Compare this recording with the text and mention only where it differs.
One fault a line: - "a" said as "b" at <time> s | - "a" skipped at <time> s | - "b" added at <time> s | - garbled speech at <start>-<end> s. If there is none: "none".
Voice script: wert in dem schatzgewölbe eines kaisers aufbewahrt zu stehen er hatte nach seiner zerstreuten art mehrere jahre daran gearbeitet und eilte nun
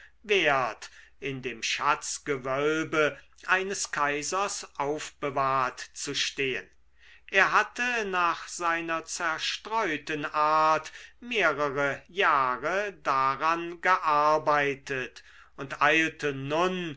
none